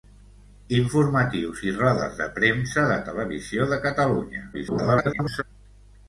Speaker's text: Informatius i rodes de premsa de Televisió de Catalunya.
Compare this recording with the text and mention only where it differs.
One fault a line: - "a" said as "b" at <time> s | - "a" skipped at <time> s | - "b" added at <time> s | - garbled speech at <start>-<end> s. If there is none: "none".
- garbled speech at 4.5-5.4 s